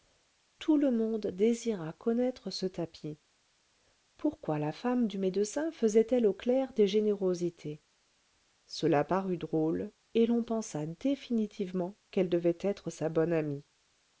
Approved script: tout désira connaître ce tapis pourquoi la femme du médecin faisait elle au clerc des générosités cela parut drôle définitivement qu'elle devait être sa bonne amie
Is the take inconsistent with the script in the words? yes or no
yes